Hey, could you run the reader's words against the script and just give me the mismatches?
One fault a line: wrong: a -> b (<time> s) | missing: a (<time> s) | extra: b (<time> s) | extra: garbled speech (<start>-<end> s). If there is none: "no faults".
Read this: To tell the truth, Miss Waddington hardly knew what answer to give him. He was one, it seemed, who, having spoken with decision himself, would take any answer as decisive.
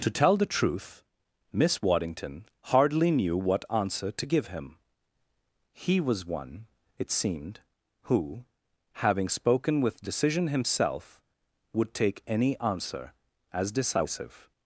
no faults